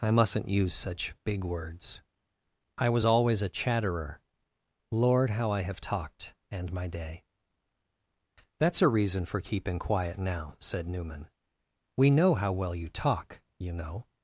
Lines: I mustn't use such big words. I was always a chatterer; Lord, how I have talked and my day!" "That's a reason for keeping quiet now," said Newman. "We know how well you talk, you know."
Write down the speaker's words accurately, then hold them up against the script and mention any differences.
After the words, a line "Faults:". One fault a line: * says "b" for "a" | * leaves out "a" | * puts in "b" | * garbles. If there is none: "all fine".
I mustn't use such big words. I was always a chatterer; Lord, how I have talked and my day!" "That's a reason for keeping quiet now," said Newman. "We know how well you talk, you know."
Faults:
all fine